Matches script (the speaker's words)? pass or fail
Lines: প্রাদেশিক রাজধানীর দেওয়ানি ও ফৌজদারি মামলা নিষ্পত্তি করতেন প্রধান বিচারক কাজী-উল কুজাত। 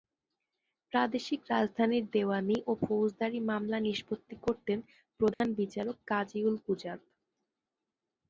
pass